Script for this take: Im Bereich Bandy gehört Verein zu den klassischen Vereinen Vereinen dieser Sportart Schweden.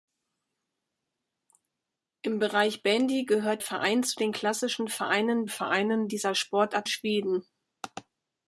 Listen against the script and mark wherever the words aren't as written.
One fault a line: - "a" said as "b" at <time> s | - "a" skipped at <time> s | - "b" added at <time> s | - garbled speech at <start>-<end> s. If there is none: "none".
none